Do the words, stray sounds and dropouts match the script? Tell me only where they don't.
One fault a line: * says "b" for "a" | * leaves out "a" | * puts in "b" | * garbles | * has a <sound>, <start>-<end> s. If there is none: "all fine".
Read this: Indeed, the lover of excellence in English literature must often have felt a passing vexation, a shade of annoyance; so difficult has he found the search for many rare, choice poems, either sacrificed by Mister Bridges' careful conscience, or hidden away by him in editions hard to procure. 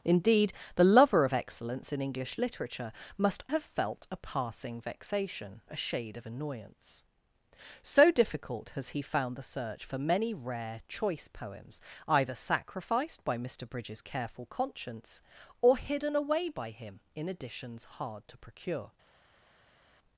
* leaves out "often"